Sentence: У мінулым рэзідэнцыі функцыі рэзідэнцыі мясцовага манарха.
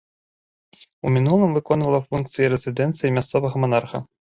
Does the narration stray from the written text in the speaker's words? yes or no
yes